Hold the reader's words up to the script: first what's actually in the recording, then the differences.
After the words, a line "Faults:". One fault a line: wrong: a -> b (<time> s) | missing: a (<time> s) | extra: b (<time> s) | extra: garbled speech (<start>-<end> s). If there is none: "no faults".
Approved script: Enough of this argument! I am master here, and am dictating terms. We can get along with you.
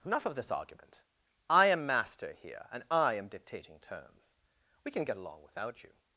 Enough of this argument! I am master here, and I am dictating terms. We can get along without you.
Faults:
extra: I (2.9 s)
wrong: with -> without (5.4 s)